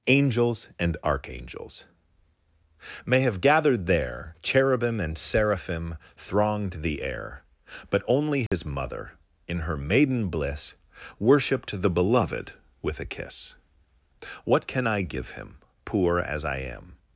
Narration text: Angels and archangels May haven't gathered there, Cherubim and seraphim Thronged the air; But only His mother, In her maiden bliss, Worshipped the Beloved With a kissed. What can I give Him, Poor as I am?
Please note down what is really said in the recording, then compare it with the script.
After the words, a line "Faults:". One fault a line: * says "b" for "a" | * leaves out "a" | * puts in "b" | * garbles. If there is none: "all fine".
Angels and archangels May have gathered there, Cherubim and seraphim Thronged the air; But only His mother, In her maiden bliss, Worshipped the Beloved With a kiss. What can I give Him, Poor as I am?
Faults:
* says "have" for "haven't"
* says "kiss" for "kissed"